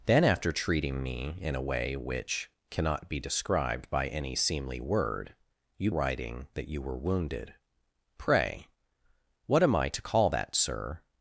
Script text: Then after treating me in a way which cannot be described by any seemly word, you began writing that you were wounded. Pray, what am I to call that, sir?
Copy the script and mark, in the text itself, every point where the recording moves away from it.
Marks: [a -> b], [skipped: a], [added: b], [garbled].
Then after treating me in a way which cannot be described by any seemly word, you [skipped: began] writing that you were wounded. Pray, what am I to call that, sir?